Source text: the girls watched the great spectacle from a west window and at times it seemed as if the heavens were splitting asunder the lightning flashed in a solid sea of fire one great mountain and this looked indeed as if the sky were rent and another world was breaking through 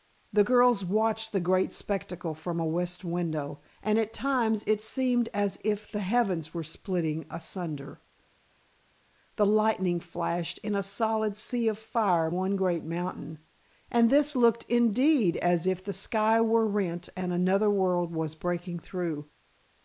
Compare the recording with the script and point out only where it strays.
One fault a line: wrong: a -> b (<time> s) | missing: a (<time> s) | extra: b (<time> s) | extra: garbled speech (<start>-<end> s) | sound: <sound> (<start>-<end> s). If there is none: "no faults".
no faults